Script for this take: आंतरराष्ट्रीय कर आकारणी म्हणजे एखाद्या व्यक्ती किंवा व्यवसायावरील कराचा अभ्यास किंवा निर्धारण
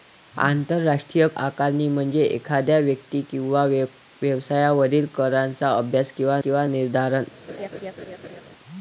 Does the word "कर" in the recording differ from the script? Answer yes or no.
yes